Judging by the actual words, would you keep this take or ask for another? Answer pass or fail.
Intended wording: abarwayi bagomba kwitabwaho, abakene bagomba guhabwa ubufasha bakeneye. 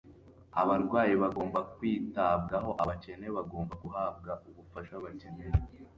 pass